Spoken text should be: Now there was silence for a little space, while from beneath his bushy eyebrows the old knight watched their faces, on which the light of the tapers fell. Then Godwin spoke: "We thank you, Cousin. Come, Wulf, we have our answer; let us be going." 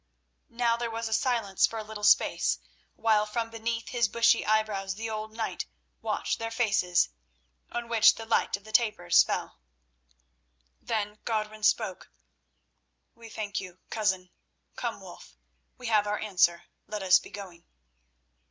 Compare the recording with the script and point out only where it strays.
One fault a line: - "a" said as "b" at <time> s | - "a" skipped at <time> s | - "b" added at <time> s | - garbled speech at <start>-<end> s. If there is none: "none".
none